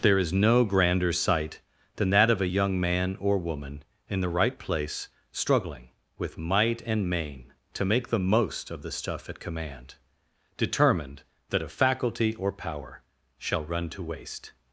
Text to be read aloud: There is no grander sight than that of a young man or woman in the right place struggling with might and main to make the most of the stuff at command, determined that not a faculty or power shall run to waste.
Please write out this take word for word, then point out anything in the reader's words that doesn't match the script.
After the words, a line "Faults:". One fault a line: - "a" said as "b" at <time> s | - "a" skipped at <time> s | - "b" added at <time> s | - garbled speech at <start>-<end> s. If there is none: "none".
There is no grander sight than that of a young man or woman in the right place struggling with might and main to make the most of the stuff at command, determined that a faculty or power shall run to waste.
Faults:
- "not" skipped at 11.6 s